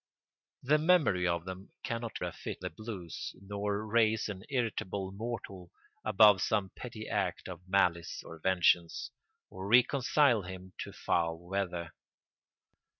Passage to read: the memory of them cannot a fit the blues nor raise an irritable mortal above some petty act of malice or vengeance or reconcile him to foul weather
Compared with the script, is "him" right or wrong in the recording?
right